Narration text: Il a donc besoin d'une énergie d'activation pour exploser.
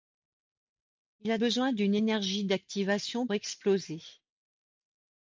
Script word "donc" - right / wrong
wrong